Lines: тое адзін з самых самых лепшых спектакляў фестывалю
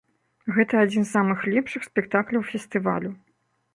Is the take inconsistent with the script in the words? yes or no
yes